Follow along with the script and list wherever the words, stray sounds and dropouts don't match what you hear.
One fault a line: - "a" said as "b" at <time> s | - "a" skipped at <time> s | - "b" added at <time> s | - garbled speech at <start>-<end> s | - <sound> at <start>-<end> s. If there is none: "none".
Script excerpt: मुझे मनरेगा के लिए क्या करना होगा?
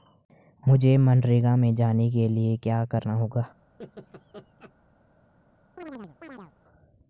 - "में जाने" added at 1.6 s
- laugh at 3.8-4.7 s
- chirp at 5.8-6.5 s